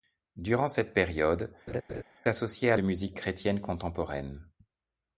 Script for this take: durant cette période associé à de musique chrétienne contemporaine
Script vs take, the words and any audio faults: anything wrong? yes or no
yes